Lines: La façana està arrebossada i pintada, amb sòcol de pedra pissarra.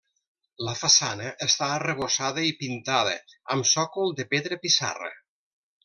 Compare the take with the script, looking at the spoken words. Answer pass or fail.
pass